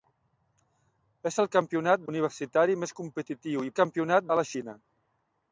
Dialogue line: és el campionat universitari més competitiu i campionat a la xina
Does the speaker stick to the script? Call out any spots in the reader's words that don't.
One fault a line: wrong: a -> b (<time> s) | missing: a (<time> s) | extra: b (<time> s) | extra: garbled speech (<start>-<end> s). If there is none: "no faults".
no faults